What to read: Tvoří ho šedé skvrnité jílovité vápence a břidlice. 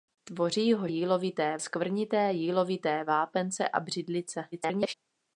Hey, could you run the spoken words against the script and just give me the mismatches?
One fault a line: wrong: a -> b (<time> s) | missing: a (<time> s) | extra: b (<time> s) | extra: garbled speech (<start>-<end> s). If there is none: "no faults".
wrong: šedé -> jílovité (0.9 s)
extra: garbled speech (4.5-4.9 s)